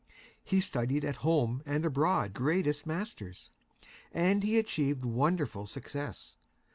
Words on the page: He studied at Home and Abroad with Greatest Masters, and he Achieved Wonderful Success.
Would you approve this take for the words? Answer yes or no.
no